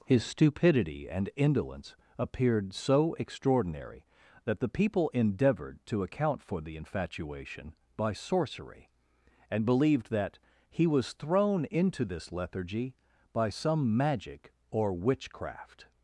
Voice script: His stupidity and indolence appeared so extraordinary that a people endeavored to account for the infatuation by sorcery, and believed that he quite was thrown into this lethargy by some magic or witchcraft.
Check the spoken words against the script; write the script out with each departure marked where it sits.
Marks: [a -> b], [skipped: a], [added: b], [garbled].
His stupidity and indolence appeared so extraordinary that [a -> the] people endeavored to account for the infatuation by sorcery, and believed that he [skipped: quite] was thrown into this lethargy by some magic or witchcraft.